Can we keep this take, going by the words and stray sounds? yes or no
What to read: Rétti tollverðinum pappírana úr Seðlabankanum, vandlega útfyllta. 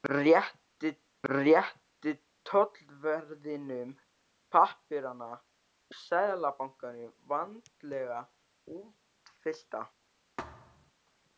no